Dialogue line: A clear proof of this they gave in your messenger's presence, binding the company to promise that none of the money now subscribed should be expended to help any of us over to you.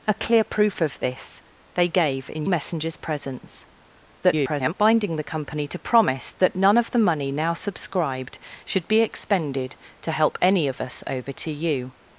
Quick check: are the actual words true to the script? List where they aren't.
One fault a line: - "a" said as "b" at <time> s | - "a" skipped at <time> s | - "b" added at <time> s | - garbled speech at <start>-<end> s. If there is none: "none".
- "your" skipped at 2.5 s
- garbled speech at 4.2-4.7 s